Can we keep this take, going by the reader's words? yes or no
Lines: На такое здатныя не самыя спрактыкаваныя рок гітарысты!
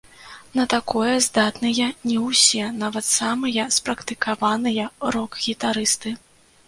no